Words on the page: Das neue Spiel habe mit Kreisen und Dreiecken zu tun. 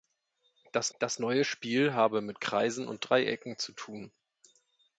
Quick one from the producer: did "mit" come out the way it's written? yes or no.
yes